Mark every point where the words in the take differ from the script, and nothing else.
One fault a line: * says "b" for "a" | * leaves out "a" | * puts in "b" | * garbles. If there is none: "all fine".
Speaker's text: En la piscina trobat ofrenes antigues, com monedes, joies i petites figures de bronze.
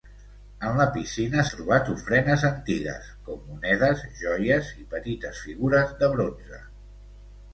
all fine